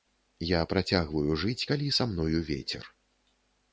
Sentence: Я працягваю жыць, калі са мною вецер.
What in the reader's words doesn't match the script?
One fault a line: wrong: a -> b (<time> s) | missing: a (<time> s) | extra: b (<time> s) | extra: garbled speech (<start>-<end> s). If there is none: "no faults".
no faults